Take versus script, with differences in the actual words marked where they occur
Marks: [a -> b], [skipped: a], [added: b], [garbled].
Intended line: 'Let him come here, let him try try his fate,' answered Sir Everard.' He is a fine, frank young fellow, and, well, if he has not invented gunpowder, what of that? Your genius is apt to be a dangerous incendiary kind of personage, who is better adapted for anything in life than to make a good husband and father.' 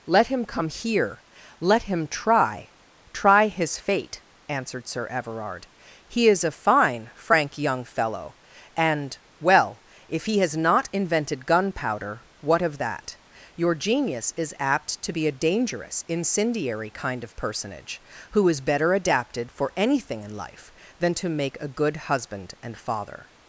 'Let him come here, let him try try his fate,' answered Sir Everard.' He is a fine, frank young fellow, and, well, if he has not invented gunpowder, what of that? Your genius is apt to be a dangerous incendiary kind of personage, who is better adapted for anything in life than to make a good husband and father.'